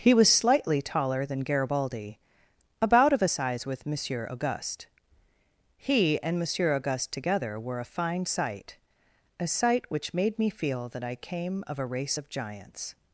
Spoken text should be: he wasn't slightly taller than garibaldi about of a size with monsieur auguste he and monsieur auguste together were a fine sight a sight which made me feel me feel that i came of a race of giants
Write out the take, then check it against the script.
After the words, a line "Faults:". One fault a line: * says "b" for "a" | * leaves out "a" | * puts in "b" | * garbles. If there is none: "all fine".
he was slightly taller than garibaldi about of a size with monsieur auguste he and monsieur auguste together were a fine sight a sight which made me feel that i came of a race of giants
Faults:
* says "was" for "wasn't"
* leaves out "me feel"